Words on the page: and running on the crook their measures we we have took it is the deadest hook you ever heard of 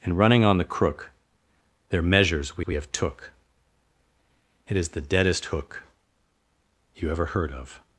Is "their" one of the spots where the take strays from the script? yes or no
no